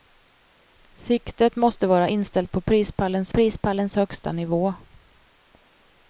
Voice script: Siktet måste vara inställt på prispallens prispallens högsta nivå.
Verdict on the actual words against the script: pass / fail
pass